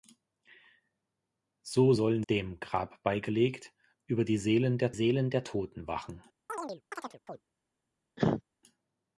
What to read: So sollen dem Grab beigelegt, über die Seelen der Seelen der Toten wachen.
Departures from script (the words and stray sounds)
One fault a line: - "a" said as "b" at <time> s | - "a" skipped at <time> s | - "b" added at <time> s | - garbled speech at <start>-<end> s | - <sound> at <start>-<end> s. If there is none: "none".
- chirp at 6.5-7.4 s
- cough at 8.2-8.4 s